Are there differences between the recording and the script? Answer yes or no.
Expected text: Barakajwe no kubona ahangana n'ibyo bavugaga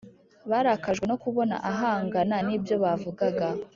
no